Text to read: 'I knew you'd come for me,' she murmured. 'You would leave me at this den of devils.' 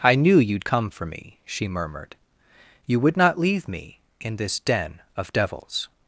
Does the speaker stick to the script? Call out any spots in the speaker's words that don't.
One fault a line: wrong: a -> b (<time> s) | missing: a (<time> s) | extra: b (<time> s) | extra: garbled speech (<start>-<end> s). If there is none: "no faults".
extra: not (3.2 s)
wrong: at -> in (4.2 s)